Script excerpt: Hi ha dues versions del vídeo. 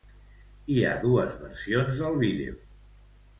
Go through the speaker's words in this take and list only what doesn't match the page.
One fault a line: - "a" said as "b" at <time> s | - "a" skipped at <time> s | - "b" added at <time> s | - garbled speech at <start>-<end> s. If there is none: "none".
none